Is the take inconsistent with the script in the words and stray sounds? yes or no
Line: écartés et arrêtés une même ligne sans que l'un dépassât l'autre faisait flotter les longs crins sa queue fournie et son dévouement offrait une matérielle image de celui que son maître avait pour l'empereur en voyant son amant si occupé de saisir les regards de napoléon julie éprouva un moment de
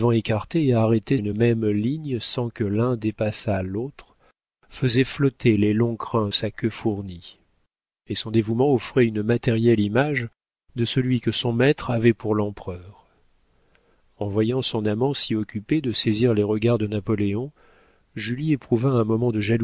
no